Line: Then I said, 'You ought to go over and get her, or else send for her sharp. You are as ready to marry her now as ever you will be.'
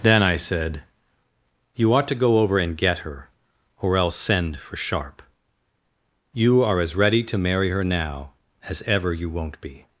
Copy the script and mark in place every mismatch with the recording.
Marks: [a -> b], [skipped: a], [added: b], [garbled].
Then I said, 'You ought to go over and get her, or else send for [skipped: her] sharp. You are as ready to marry her now as ever you [will -> won't] be.'